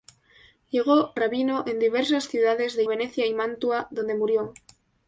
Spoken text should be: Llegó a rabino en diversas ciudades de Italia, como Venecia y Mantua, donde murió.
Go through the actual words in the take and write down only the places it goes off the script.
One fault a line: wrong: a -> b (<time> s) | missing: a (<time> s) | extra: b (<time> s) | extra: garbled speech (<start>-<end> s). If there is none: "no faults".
missing: a (1.1 s)
missing: Italia como (2.8 s)